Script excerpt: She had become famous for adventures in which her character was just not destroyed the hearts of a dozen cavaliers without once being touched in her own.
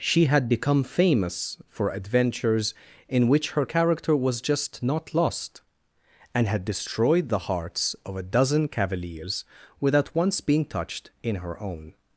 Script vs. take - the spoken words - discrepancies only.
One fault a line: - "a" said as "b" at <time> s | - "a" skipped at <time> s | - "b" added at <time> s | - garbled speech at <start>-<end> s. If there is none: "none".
- "lost and had" added at 5.1 s